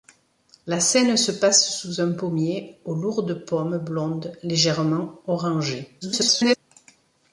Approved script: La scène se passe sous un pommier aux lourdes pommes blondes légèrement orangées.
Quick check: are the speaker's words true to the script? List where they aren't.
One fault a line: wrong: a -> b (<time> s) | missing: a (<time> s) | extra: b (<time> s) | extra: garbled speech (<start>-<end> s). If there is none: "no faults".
extra: garbled speech (6.0-6.6 s)